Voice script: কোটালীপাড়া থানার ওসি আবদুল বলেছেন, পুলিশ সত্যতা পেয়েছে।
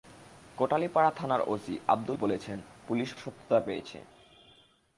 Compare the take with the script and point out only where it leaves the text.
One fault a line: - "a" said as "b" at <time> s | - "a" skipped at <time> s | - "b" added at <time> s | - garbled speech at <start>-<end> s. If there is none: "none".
none